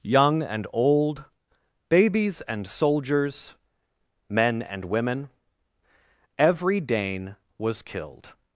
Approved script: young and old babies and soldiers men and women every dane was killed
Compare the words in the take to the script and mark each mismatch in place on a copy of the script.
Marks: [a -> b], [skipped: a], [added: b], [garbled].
young and old babies and soldiers men and women every dane was killed